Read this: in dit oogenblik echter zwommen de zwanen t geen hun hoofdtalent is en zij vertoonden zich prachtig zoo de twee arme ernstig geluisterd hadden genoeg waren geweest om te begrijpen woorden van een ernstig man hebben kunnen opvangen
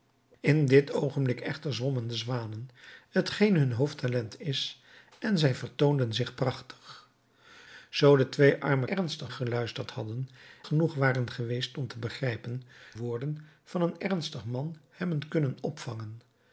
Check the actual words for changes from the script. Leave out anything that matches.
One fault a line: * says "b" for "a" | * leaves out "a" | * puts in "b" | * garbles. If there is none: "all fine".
all fine